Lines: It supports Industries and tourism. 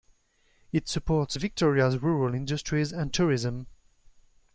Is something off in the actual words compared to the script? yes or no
yes